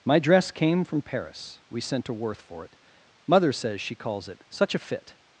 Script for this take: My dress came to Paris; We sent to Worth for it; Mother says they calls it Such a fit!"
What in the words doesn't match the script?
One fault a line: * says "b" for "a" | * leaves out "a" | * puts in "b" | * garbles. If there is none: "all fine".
* says "from" for "to"
* says "she" for "they"